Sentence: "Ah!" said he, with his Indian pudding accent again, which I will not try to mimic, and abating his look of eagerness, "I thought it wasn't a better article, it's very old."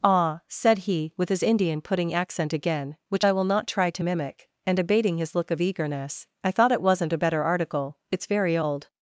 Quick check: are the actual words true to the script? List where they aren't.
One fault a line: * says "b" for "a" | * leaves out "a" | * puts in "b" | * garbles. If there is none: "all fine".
all fine